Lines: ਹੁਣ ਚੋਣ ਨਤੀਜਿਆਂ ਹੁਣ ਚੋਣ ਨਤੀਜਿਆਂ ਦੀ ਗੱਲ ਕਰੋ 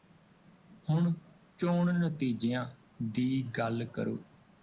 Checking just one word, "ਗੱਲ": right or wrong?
right